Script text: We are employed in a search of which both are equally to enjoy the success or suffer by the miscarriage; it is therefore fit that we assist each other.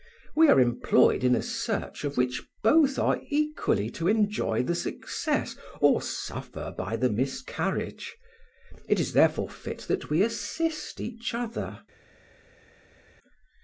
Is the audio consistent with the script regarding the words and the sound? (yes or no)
yes